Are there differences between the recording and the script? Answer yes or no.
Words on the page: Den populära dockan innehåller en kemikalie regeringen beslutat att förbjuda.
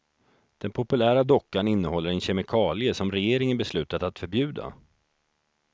yes